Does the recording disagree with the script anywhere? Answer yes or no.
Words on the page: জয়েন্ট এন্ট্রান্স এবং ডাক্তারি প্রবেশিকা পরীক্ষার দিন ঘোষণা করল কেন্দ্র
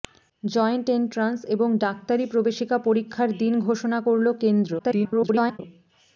yes